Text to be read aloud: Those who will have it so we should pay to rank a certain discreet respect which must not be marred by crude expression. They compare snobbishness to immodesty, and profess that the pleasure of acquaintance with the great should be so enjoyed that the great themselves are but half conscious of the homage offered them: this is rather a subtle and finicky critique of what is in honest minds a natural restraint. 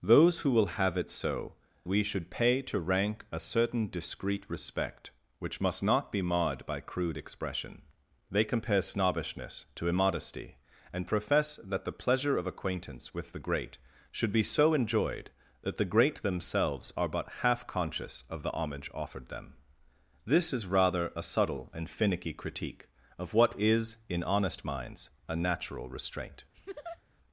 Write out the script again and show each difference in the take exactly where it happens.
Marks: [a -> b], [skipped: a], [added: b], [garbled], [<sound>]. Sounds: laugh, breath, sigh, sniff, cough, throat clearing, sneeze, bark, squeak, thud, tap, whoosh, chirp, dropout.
Those who will have it so we should pay to rank a certain discreet respect which must not be marred by crude expression. They compare snobbishness to immodesty, and profess that the pleasure of acquaintance with the great should be so enjoyed that the great themselves are but half conscious of the homage offered them: this is rather a subtle and finicky critique of what is in honest minds a natural restraint. [laugh]